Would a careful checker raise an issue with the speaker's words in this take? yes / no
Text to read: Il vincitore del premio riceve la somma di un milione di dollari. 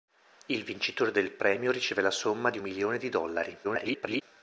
yes